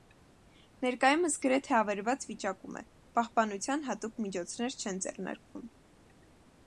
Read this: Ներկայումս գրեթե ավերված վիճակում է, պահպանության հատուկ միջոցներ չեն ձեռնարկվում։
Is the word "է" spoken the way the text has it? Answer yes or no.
yes